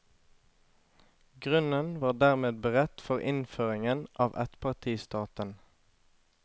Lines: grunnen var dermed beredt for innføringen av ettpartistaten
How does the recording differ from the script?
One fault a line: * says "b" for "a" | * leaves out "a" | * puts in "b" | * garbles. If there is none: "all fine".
all fine